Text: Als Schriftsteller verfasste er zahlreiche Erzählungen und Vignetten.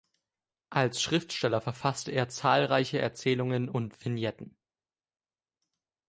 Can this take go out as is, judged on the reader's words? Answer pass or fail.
pass